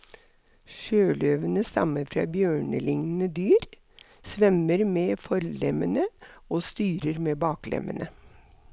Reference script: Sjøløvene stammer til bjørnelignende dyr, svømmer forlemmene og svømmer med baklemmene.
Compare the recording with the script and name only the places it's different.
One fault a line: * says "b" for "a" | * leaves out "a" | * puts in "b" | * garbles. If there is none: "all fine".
* says "fra" for "til"
* puts in "med"
* says "styrer" for "svømmer"